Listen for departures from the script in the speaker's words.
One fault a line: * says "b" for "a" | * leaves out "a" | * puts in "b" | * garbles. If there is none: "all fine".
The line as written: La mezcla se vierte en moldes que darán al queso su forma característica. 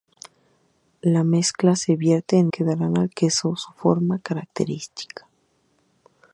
* leaves out "moldes"